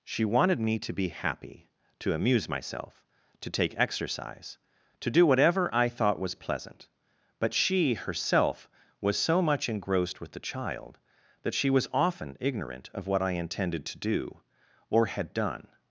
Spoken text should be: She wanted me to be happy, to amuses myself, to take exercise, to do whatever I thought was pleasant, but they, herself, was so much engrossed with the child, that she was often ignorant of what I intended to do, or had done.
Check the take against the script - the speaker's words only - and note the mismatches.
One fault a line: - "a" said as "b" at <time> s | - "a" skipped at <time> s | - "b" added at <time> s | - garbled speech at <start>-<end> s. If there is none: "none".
- "amuses" said as "amuse" at 2.1 s
- "they" said as "she" at 7.5 s